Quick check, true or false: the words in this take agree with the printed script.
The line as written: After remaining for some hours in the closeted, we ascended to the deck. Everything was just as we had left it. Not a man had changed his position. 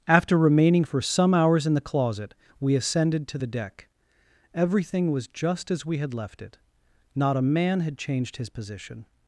false